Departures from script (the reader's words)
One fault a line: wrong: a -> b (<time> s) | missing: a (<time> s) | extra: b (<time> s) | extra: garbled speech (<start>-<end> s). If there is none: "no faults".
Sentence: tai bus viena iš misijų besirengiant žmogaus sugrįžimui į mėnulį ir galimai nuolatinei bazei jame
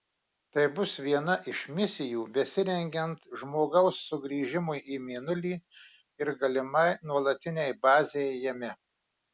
no faults